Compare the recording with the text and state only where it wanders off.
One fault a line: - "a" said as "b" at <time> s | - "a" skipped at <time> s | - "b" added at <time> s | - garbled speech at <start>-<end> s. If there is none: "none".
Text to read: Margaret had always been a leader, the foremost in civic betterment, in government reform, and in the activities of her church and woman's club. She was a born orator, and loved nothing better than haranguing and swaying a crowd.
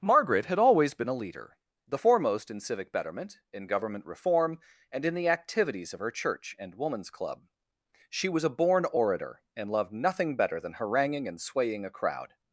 none